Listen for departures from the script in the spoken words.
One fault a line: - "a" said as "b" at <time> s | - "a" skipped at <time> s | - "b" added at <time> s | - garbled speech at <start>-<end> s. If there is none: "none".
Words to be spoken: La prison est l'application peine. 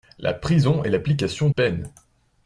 none